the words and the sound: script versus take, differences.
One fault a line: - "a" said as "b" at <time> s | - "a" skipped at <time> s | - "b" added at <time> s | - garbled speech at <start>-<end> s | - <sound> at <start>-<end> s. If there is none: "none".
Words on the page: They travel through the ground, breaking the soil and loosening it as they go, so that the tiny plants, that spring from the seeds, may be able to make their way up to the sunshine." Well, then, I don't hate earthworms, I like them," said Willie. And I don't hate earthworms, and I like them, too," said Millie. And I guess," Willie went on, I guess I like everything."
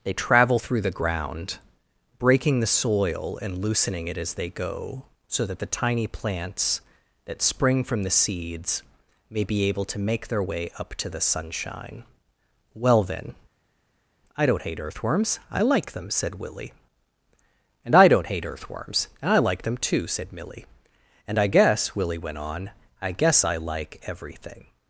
none